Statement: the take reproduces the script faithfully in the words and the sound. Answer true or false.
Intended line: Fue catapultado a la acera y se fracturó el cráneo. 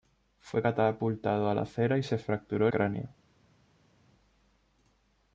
false